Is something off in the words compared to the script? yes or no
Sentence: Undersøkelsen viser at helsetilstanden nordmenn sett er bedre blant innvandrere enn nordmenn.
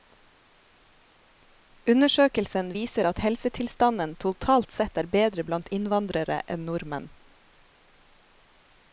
yes